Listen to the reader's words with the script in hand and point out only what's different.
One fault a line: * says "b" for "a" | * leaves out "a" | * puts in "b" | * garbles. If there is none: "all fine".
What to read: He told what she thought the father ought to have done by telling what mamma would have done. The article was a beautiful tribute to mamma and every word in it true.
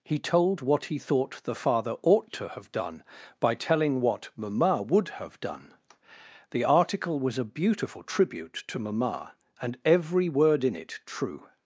* says "he" for "she"